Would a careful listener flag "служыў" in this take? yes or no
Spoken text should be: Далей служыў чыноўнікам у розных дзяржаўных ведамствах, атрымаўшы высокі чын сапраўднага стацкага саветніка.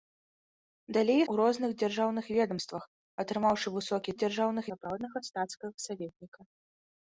yes